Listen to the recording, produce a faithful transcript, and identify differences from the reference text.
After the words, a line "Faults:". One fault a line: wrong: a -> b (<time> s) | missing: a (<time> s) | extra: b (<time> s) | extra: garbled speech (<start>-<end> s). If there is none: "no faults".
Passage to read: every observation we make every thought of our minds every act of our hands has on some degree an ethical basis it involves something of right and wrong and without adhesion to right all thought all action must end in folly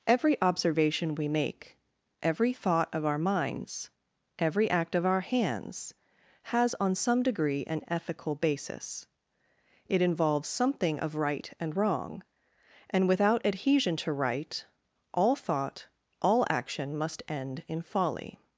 every observation we make every thought of our minds every act of our hands has on some degree an ethical basis it involves something of right and wrong and without adhesion to right all thought all action must end in folly
Faults:
no faults